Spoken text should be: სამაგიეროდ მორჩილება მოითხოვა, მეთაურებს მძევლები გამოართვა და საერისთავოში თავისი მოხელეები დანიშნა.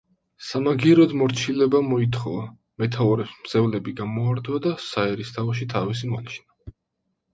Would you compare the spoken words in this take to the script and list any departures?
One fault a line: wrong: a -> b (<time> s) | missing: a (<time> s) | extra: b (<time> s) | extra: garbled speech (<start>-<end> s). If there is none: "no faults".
missing: მოხელეები (6.1 s)